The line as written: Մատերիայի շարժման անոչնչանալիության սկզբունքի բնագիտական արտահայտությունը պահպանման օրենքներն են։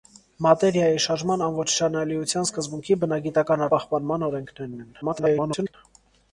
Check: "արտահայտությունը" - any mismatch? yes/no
yes